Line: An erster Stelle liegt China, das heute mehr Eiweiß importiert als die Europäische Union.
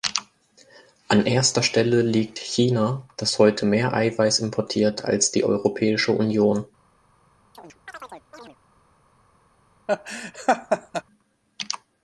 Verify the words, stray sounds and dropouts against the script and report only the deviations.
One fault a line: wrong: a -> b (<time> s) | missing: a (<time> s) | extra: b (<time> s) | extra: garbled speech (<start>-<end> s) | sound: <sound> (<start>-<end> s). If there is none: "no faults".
sound: chirp (7.5-8.6 s)
sound: laugh (9.9-11.0 s)